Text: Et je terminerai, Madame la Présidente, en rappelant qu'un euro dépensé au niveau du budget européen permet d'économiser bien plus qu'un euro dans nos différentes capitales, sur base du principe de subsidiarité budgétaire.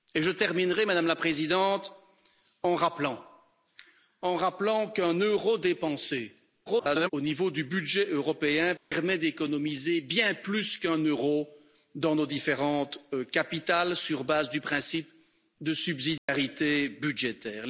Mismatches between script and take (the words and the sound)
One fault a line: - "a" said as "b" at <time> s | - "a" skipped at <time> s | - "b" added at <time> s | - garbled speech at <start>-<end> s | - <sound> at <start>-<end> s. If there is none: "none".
- garbled speech at 6.7-7.1 s
- dropout at 8.8-8.9 s
- dropout at 16.2-16.3 s